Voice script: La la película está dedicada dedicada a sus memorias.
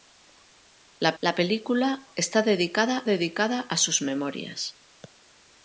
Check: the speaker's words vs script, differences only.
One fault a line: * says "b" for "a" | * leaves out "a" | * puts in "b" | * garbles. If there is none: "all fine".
all fine